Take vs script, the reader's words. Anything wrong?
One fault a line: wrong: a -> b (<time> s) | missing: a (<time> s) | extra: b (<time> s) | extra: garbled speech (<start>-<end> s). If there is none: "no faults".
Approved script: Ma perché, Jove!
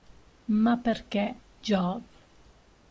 no faults